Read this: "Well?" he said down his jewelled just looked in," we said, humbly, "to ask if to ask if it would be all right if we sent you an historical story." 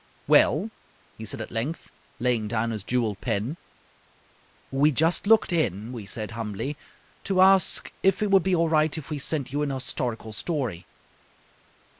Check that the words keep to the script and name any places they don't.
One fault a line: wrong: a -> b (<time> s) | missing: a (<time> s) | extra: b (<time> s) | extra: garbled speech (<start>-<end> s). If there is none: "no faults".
extra: at length laying (1.4 s)
extra: pen We (3.2 s)
missing: to ask if (8.2 s)